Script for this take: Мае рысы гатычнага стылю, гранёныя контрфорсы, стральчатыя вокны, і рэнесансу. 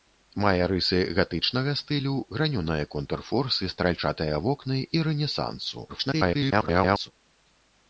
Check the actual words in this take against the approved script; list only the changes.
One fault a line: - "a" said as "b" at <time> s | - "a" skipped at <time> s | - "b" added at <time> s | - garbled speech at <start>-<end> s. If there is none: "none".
- garbled speech at 5.9-7.1 s